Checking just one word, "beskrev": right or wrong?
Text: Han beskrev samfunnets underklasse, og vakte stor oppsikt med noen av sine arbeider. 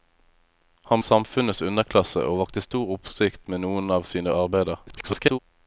wrong